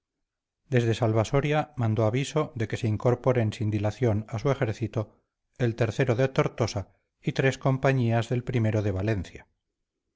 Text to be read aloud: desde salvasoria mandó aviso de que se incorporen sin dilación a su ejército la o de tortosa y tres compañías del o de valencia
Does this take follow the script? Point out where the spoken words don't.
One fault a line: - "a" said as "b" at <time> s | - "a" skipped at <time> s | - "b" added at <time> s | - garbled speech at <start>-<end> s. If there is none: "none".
- "la" said as "el" at 5.6 s